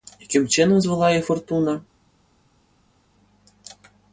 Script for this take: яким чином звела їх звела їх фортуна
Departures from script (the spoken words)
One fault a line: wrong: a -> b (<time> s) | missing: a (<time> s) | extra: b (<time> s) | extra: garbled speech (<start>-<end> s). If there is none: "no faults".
missing: звела їх (1.3 s)